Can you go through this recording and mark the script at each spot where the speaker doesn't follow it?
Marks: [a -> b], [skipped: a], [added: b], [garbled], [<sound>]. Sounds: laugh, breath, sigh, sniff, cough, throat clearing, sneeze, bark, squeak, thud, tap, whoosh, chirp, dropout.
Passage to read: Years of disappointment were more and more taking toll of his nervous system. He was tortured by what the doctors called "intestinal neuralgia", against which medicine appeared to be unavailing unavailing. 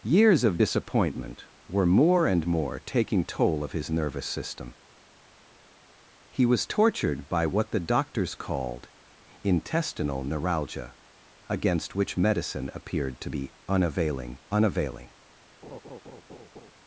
Years of disappointment were more and more taking toll of his nervous system. He was tortured by what the doctors called "intestinal neuralgia", against which medicine appeared to be unavailing unavailing. [laugh]